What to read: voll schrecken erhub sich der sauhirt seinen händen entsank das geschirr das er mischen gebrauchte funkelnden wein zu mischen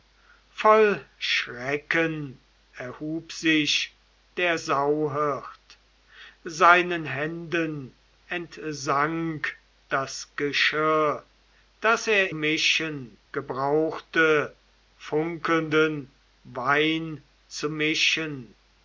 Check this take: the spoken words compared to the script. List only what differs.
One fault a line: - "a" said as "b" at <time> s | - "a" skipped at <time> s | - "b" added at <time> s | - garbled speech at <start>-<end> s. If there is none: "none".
none